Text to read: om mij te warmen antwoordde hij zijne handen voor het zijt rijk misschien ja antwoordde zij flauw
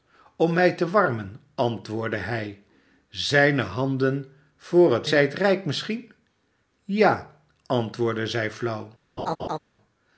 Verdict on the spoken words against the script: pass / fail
pass